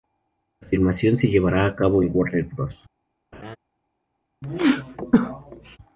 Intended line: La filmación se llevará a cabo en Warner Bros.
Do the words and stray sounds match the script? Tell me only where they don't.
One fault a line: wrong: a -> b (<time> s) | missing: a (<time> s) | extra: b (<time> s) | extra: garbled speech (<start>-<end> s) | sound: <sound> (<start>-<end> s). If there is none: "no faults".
sound: laugh (3.3-3.6 s)
sound: sneeze (4.4-5.8 s)